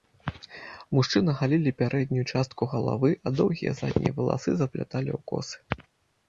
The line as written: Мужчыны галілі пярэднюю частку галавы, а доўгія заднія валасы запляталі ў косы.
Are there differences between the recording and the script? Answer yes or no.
no